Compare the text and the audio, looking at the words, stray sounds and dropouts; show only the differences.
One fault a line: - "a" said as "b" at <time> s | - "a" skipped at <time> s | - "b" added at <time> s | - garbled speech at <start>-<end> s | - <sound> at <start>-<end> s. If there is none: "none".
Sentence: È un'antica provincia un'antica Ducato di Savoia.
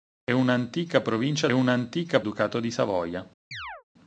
- chirp at 3.5-3.8 s